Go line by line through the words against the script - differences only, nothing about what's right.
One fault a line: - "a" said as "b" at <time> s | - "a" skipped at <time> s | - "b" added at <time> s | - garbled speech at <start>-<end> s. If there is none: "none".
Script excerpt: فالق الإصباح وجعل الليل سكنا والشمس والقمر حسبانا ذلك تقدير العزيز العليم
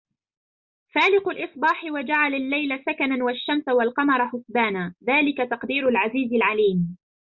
none